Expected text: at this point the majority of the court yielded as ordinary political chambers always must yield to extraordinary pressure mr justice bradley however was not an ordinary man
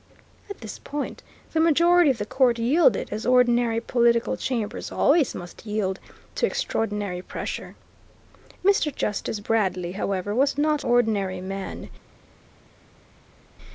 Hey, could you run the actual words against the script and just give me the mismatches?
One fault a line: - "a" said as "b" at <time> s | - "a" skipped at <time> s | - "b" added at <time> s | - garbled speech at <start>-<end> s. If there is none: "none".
- "an" skipped at 10.8 s